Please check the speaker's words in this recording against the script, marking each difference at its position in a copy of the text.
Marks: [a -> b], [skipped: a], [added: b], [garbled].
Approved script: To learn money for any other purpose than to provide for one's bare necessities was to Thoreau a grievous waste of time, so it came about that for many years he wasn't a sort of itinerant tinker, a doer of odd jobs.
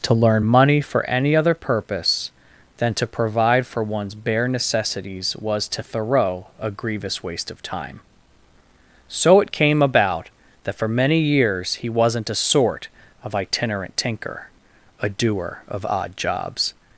To learn money for any other purpose than to provide for one's bare necessities was to Thoreau a grievous waste of time, so it came about that for many years he wasn't a sort of itinerant tinker, a doer of odd jobs.